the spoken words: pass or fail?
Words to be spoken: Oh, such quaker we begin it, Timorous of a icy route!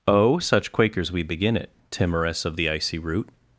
fail